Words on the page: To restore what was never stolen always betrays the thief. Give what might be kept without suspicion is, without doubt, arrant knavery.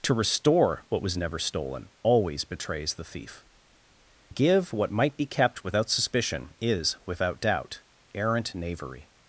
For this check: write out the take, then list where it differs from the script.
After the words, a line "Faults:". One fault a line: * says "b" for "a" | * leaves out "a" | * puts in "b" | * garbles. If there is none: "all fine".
To restore what was never stolen always betrays the thief. Give what might be kept without suspicion is, without doubt, arrant knavery.
Faults:
all fine